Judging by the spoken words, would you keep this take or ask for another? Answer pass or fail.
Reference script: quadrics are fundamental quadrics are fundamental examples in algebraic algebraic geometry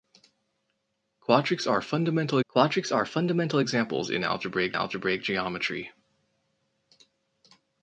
pass